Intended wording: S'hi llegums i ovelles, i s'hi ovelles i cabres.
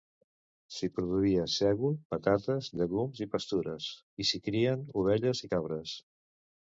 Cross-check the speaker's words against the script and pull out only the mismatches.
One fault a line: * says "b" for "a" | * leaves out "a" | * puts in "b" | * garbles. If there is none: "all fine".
* puts in "produïa sègol patates"
* says "pastures" for "ovelles"
* puts in "crien"